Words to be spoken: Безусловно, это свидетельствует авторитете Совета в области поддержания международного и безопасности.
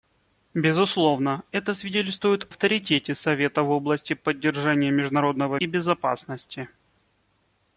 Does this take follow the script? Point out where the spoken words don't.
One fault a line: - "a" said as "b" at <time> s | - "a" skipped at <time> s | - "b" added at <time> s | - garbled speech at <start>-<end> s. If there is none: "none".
none